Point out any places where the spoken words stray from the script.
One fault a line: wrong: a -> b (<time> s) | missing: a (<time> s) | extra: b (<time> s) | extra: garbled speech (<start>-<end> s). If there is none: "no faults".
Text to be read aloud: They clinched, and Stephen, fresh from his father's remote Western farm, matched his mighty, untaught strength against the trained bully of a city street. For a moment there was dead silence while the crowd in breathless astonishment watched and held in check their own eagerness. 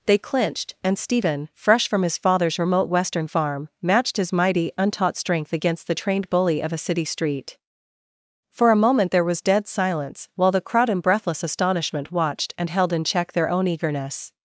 no faults